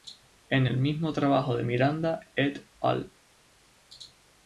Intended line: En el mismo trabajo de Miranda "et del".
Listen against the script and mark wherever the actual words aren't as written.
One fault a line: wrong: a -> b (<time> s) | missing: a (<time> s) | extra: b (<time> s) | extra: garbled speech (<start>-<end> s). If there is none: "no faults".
wrong: del -> al (2.8 s)